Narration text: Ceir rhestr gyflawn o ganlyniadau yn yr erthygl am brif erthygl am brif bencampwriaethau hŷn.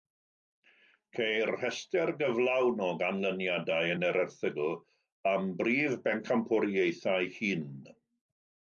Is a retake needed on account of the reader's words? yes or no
yes